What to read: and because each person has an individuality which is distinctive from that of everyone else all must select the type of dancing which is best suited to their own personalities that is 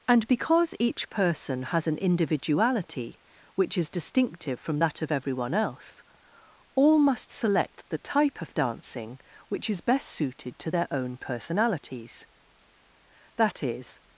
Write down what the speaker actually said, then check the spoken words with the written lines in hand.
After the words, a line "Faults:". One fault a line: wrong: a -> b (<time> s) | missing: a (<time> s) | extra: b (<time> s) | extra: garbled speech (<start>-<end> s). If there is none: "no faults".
and because each person has an individuality which is distinctive from that of everyone else all must select the type of dancing which is best suited to their own personalities that is
Faults:
no faults